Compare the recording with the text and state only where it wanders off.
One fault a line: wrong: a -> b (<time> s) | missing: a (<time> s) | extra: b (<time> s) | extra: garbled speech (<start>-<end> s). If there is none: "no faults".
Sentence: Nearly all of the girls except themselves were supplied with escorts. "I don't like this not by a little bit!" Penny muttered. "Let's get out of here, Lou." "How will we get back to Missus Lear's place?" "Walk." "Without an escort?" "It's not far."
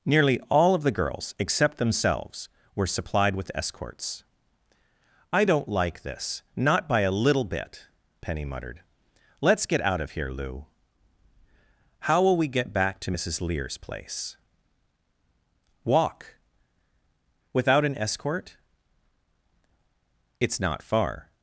no faults